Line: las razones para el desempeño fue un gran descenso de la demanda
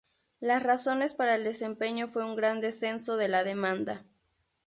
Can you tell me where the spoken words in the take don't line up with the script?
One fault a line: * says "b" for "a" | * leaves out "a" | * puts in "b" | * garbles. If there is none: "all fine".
all fine